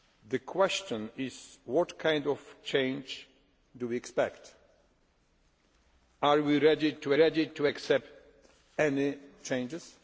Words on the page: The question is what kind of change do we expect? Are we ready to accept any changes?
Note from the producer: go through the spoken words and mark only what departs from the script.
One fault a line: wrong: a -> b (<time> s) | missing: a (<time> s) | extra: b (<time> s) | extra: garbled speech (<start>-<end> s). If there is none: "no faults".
extra: ready to (7.1 s)